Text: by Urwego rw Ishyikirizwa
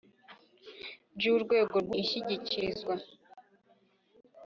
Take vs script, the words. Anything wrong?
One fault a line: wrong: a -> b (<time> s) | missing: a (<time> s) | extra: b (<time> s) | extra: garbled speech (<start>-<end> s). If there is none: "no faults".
no faults